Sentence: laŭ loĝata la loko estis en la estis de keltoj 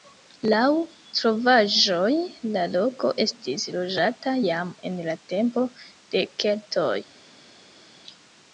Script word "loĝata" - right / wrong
wrong